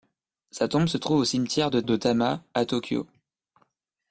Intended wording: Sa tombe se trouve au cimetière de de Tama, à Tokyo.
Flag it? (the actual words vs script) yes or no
no